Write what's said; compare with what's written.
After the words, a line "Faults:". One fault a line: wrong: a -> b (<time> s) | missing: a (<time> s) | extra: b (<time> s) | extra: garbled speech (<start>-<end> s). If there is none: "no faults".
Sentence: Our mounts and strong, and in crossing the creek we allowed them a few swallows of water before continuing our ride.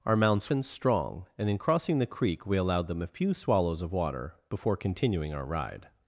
Our mounts and strong, and in crossing the creek we allowed them a few swallows of water before continuing our ride.
Faults:
no faults